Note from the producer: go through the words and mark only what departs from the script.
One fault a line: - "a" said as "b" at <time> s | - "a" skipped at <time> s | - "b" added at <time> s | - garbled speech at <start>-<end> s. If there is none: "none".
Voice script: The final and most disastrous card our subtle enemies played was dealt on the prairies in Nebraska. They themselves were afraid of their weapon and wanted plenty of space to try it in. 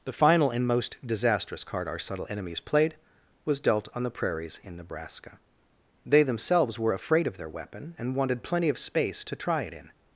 none